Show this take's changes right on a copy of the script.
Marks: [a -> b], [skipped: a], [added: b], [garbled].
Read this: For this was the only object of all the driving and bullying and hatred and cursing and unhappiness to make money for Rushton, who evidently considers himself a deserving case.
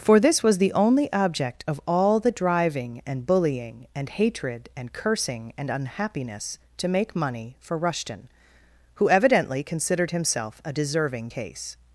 For this was the only object of all the driving and bullying and hatred and cursing and unhappiness to make money for Rushton, who evidently [considers -> considered] himself a deserving case.